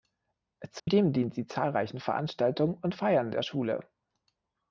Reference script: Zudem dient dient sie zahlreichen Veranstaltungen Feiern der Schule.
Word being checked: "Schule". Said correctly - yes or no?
yes